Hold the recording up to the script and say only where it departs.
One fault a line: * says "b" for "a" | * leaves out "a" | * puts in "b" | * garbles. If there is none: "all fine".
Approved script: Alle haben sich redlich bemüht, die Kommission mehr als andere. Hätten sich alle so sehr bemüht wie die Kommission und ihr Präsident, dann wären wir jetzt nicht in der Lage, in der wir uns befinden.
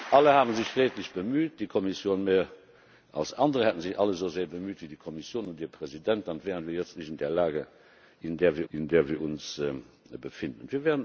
* puts in "in der wir"